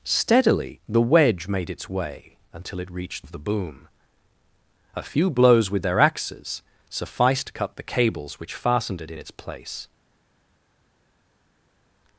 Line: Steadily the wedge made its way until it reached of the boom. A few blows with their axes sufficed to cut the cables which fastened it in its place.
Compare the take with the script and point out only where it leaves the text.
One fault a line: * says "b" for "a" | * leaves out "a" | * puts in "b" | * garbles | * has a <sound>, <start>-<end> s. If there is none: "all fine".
all fine